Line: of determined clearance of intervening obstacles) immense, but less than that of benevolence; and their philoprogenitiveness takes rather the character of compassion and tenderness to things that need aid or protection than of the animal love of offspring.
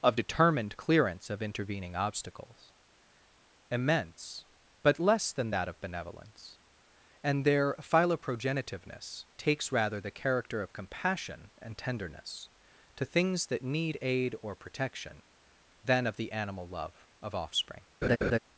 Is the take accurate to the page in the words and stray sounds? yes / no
no